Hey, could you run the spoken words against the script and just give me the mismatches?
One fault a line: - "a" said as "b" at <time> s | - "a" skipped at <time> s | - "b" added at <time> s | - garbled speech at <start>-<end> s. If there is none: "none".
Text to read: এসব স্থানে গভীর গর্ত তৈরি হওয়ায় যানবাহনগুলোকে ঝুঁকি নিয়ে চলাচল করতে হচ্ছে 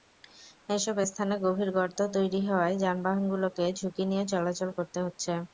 none